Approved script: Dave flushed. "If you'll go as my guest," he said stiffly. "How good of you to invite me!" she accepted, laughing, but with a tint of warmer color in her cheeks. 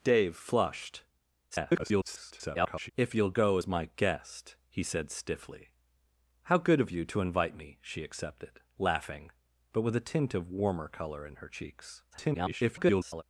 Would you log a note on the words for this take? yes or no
yes